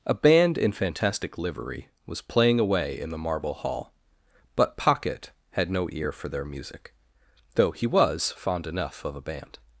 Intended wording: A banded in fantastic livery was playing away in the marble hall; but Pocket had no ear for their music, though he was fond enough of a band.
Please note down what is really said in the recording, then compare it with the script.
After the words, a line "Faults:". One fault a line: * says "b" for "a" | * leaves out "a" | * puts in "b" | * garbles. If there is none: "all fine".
A band in fantastic livery was playing away in the marble hall; but Pocket had no ear for their music, though he was fond enough of a band.
Faults:
* says "band" for "banded"